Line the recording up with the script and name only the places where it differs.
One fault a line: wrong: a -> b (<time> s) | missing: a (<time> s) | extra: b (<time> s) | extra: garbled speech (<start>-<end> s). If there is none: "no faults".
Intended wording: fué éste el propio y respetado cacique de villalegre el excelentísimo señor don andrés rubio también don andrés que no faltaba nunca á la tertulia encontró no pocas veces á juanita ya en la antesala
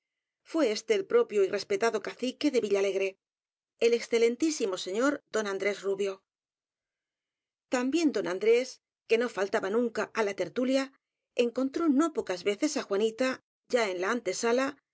no faults